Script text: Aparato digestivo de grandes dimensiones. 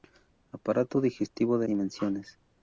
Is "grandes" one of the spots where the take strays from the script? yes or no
yes